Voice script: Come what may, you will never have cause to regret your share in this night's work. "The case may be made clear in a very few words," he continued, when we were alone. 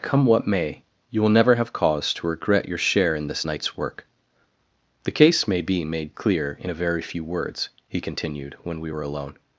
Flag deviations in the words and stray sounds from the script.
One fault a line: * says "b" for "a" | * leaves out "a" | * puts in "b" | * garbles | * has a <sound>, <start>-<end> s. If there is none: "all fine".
all fine